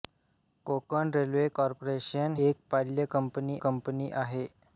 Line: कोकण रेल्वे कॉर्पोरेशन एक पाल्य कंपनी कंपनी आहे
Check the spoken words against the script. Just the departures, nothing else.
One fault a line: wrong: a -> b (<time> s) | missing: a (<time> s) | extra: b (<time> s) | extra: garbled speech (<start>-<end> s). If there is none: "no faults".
no faults